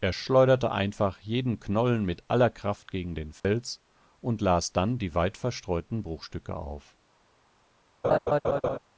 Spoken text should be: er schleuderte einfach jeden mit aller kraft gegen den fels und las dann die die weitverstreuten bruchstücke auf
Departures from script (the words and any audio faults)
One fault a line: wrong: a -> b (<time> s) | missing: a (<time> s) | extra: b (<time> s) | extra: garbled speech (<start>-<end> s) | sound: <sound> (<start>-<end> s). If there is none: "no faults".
extra: knollen (1.6 s)
sound: dropout (3.4-3.4 s)
missing: die (5.1 s)
sound: laugh (8.0-8.8 s)